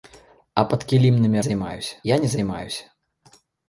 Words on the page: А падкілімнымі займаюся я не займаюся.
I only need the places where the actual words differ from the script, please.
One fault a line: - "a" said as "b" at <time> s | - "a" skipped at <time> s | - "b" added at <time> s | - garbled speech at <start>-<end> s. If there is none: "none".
none